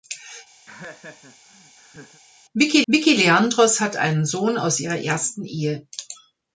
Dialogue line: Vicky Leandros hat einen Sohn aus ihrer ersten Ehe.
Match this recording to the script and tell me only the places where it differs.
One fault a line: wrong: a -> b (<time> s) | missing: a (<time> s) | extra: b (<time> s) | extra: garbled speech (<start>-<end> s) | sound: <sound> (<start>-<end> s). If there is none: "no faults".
sound: laugh (0.7-2.2 s)
extra: vicky (2.9 s)